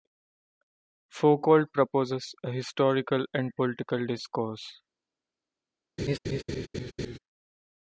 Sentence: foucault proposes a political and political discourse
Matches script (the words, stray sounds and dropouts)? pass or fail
fail